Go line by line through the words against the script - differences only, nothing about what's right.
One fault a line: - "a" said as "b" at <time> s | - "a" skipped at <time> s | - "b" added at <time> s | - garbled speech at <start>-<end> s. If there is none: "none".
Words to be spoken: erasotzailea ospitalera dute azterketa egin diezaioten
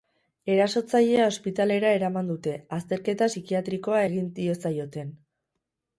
- "eraman" added at 2.0 s
- "psikiatrikoa" added at 3.3 s